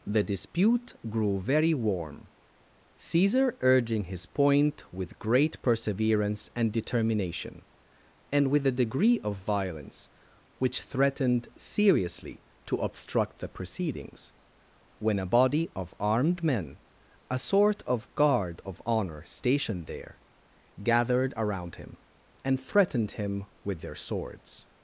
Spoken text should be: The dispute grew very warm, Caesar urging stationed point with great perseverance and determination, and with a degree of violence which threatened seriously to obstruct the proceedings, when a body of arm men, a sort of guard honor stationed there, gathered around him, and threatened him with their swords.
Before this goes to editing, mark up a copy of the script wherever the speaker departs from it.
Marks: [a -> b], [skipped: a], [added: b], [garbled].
The dispute grew very warm, Caesar urging [stationed -> his] point with great perseverance and determination, and with a degree of violence which threatened seriously to obstruct the proceedings, when a body of [arm -> armed] men, a sort of guard [added: of] honor stationed there, gathered around him, and threatened him with their swords.